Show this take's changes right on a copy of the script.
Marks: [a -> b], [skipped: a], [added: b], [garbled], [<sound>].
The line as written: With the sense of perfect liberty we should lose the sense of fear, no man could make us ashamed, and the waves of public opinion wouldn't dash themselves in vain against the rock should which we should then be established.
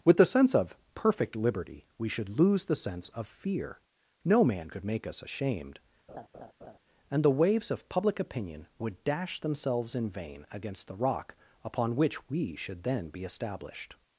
With the sense of perfect liberty we should lose the sense of fear, no man could make us ashamed, [laugh] and the waves of public opinion [wouldn't -> would] dash themselves in vain against the rock [should -> upon] which we should then be established.